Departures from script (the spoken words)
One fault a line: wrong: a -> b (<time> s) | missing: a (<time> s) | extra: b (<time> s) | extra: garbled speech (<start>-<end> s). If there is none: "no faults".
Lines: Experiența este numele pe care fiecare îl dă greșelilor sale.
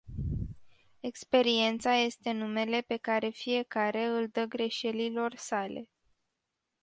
no faults